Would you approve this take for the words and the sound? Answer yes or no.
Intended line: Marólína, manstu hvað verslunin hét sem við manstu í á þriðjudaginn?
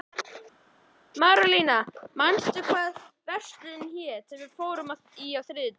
no